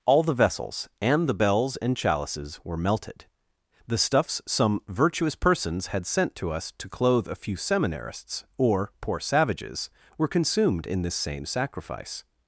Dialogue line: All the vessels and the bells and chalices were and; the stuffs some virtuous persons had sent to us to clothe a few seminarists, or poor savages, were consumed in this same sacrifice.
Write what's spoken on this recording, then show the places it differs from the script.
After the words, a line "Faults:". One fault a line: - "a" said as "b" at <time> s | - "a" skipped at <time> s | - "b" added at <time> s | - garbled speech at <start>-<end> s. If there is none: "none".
All the vessels and the bells and chalices were melted; the stuffs some virtuous persons had sent to us to clothe a few seminarists, or poor savages, were consumed in this same sacrifice.
Faults:
- "and" said as "melted" at 2.8 s